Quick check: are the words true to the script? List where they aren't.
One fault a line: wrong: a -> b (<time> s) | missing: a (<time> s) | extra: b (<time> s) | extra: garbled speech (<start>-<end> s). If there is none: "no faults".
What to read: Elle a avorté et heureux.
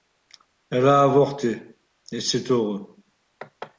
extra: c'est (2.2 s)